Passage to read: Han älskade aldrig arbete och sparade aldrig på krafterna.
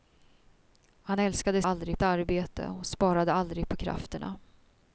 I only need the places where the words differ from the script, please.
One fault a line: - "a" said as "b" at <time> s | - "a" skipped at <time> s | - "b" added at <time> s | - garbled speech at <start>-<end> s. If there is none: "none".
none